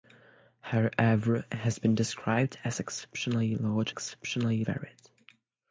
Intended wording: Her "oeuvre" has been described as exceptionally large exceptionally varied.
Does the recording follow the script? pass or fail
pass